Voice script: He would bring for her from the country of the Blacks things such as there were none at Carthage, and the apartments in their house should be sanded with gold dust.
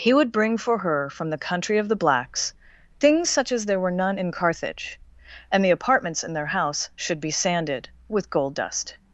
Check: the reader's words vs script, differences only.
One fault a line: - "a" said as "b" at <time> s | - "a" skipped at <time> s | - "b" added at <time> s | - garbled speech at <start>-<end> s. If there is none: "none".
- "at" said as "in" at 4.2 s